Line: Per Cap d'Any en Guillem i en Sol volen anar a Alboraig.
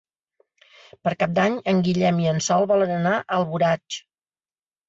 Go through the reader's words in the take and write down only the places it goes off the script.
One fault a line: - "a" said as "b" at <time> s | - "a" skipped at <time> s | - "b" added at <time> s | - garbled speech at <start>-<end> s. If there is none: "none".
none